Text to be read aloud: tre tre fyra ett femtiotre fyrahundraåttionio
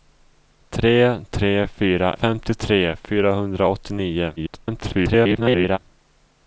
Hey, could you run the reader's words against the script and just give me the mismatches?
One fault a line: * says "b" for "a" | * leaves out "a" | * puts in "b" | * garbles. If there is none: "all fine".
* leaves out "ett"
* garbles